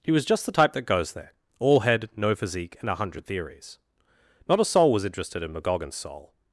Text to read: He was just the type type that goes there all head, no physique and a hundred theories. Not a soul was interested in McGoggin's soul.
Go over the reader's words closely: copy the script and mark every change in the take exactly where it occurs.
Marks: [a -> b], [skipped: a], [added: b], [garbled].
He was just the type [skipped: type] that goes there all head, no physique and a hundred theories. Not a soul was interested in McGoggin's soul.